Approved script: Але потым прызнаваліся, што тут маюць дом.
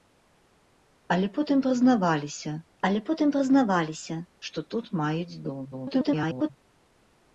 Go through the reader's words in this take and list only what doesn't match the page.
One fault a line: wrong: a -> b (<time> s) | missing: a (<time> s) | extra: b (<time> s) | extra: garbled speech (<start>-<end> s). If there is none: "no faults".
extra: але потым прызнаваліся (2.9 s)
extra: garbled speech (5.7-6.5 s)